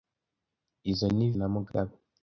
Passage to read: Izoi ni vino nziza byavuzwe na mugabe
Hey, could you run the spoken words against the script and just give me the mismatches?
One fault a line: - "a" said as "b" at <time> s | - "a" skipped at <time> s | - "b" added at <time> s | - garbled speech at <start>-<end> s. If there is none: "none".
- "vino nziza byavuzwe" skipped at 1.3 s